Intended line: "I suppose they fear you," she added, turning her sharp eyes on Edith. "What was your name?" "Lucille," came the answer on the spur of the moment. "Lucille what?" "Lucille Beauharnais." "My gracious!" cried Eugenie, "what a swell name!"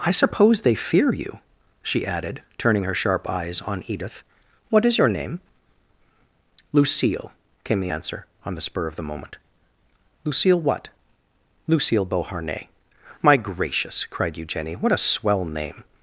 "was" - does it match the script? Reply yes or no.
no